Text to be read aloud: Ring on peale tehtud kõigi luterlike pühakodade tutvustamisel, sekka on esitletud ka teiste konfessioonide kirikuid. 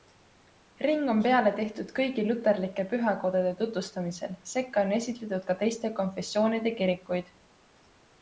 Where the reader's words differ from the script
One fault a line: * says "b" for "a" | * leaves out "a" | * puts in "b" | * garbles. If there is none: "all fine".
all fine